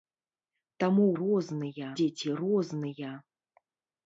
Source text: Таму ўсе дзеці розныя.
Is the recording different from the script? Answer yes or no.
yes